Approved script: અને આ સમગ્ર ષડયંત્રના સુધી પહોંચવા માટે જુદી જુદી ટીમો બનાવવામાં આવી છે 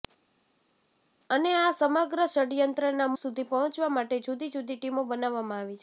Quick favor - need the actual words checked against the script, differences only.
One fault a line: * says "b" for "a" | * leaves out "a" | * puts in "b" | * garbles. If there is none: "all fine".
all fine